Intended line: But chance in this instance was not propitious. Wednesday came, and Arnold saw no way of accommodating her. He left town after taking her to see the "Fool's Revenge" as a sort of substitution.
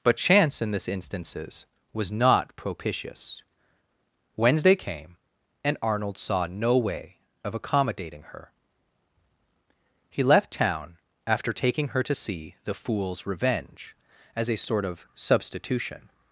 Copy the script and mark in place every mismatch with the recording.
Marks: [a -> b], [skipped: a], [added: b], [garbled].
But chance in this [instance -> instances] was not propitious. Wednesday came, and Arnold saw no way of accommodating her. He left town after taking her to see the "Fool's Revenge" as a sort of substitution.